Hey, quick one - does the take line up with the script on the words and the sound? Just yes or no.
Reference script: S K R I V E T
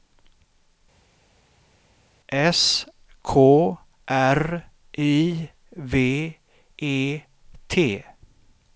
yes